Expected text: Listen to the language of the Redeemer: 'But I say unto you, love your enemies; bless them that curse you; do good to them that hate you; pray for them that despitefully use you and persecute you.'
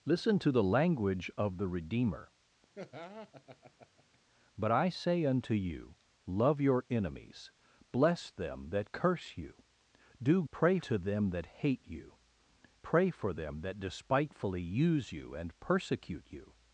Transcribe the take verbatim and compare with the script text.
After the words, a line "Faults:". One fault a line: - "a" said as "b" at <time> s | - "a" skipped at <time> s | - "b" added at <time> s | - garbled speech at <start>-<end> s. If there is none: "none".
Listen to the language of the Redeemer: 'But I say unto you, love your enemies; bless them that curse you; do pray to them that hate you; pray for them that despitefully use you and persecute you.'
Faults:
- "good" said as "pray" at 10.5 s